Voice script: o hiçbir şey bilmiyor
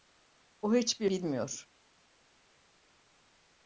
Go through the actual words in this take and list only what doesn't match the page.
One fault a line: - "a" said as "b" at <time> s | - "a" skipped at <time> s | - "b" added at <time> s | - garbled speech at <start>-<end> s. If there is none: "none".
- "şey" skipped at 1.1 s